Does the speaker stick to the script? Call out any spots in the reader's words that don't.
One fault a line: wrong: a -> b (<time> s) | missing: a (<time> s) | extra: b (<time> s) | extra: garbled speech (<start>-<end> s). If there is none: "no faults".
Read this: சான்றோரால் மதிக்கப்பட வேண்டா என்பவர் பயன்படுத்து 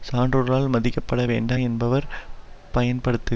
no faults